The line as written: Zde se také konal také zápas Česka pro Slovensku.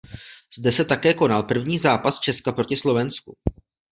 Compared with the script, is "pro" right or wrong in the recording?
wrong